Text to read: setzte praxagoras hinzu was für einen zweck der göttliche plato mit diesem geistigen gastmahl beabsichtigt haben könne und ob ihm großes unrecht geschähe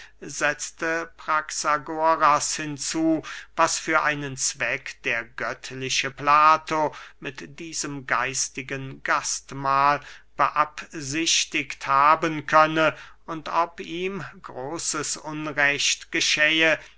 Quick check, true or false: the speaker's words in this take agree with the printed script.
true